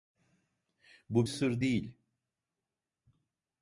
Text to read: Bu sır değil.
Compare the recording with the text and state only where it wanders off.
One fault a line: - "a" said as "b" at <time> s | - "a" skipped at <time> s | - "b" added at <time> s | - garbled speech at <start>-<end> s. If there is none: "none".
none